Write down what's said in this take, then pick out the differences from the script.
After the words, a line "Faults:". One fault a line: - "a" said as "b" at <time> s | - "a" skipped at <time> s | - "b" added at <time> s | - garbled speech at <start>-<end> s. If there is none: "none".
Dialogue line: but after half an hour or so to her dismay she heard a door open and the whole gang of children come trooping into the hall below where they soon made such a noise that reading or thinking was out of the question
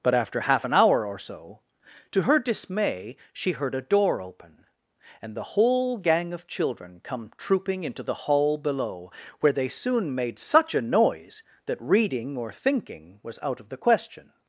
but after half an hour or so to her dismay she heard a door open and the whole gang of children come trooping into the hall below where they soon made such a noise that reading or thinking was out of the question
Faults:
none